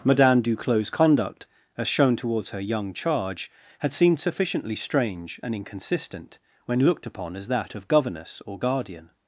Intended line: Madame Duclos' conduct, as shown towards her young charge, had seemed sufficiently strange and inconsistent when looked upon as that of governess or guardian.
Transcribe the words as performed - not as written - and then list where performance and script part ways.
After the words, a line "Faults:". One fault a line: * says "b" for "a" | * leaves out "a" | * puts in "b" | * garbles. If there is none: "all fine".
Madame Duclos' conduct, as shown towards her young charge, had seemed sufficiently strange and inconsistent when looked upon as that of governess or guardian.
Faults:
all fine